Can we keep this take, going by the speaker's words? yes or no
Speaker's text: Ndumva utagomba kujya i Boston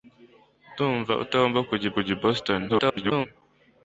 no